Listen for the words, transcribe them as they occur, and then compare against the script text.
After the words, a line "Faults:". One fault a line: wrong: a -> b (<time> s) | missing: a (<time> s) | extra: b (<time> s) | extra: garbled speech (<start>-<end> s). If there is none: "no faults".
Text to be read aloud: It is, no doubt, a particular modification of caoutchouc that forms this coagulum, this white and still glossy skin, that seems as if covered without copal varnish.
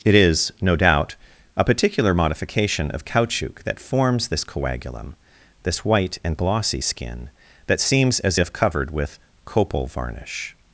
It is, no doubt, a particular modification of caoutchouc that forms this coagulum, this white and glossy skin, that seems as if covered with copal varnish.
Faults:
missing: still (6.4 s)
wrong: without -> with (8.9 s)